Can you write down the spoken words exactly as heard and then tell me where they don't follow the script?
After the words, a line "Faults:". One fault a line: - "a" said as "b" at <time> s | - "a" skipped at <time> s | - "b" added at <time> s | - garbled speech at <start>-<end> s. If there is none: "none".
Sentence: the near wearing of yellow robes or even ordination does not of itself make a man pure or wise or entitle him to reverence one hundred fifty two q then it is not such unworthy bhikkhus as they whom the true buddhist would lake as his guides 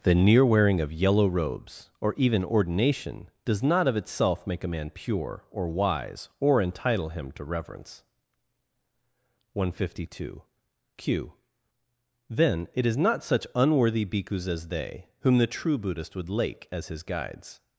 the near wearing of yellow robes or even ordination does not of itself make a man pure or wise or entitle him to reverence one hundred fifty two q then it is not such unworthy bhikkhus as they whom the true buddhist would lake as his guides
Faults:
none